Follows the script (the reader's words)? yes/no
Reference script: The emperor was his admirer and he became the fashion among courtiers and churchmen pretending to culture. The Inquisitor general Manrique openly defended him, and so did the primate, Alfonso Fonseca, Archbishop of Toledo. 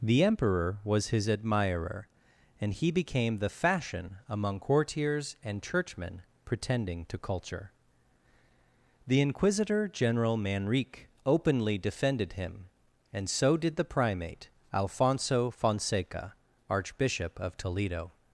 yes